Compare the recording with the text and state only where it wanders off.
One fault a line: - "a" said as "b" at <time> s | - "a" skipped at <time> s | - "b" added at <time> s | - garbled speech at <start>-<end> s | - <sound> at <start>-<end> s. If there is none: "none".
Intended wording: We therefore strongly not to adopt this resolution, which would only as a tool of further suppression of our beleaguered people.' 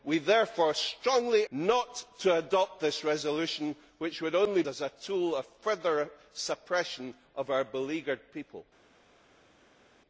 none